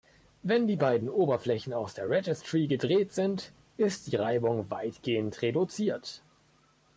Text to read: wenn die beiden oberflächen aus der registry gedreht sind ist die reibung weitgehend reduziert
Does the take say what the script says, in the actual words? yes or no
yes